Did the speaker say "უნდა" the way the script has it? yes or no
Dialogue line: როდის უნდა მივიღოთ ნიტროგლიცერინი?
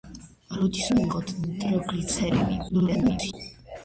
no